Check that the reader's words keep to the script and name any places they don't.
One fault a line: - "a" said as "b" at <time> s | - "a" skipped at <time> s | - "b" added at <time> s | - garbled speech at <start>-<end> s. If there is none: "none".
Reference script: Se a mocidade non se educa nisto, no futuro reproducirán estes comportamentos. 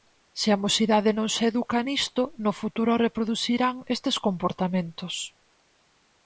none